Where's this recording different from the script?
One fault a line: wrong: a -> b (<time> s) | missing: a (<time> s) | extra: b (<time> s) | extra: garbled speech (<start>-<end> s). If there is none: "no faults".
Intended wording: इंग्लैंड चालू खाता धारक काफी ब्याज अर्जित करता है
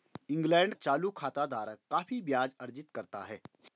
no faults